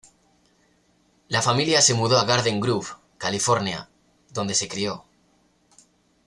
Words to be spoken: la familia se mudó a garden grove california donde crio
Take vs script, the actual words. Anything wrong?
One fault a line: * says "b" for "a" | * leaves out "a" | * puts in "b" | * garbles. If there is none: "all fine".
* puts in "se"